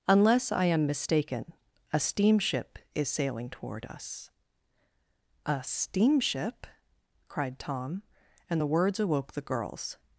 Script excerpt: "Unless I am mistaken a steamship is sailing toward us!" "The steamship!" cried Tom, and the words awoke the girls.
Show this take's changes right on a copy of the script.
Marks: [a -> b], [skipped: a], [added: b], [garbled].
"Unless I am mistaken a steamship is sailing toward us!" ["The -> A] steamship!" cried Tom, and the words awoke the girls.